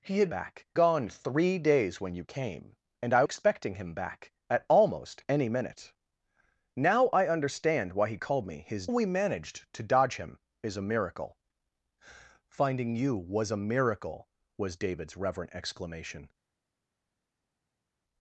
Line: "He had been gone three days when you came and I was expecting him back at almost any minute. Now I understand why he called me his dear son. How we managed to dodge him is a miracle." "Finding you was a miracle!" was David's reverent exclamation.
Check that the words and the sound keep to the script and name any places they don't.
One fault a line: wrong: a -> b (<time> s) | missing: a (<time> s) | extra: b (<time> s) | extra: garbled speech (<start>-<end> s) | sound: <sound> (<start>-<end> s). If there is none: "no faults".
wrong: been -> back (0.3 s)
missing: was (3.2 s)
missing: dear son How (8.9 s)